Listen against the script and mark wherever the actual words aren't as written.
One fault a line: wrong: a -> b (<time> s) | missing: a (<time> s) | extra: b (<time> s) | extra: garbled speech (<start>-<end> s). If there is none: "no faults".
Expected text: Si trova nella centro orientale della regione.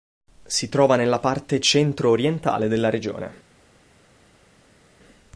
extra: parte (1.2 s)